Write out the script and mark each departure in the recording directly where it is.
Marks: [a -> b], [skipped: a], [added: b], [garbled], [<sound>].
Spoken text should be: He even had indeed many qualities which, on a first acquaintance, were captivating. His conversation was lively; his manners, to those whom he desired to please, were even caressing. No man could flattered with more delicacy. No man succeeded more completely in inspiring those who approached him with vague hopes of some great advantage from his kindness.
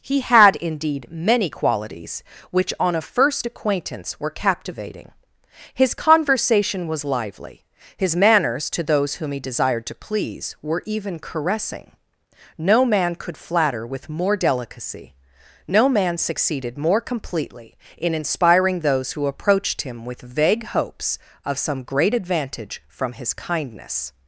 He [skipped: even] had indeed many qualities which, on a first acquaintance, were captivating. His conversation was lively; his manners, to those whom he desired to please, were even caressing. No man could [flattered -> flatter] with more delicacy. No man succeeded more completely in inspiring those who approached him with vague hopes of some great advantage from his kindness.